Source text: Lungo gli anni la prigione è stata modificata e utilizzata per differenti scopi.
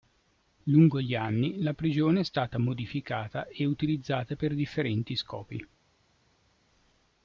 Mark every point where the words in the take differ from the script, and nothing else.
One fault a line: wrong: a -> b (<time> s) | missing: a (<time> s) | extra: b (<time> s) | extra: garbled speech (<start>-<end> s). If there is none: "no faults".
no faults